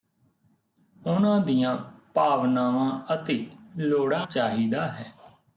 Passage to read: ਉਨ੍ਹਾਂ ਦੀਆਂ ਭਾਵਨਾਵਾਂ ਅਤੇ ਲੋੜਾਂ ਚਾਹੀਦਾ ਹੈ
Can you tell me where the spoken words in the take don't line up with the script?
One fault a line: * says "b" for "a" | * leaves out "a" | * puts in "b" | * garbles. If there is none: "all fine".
all fine